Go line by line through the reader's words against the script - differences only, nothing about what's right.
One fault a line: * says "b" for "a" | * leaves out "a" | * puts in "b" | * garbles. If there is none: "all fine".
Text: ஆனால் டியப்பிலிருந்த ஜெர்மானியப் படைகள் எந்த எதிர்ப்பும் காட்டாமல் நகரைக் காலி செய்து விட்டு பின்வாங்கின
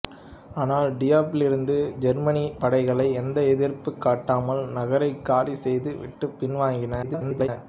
* garbles